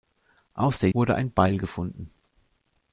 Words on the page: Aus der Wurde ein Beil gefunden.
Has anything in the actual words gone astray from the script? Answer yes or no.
no